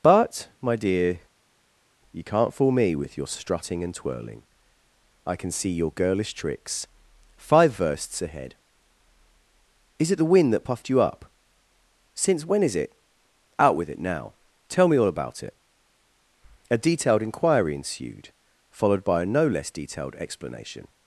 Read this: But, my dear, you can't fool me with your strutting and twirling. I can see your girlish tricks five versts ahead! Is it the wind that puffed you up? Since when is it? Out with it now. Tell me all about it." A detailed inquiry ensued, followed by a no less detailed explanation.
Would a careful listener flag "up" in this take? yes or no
no